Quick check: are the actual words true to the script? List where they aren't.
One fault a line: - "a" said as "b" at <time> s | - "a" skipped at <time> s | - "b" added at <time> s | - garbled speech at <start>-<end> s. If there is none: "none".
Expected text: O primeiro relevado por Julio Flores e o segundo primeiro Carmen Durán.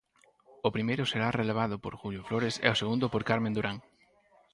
- "será" added at 1.1 s
- "primeiro" said as "por" at 3.1 s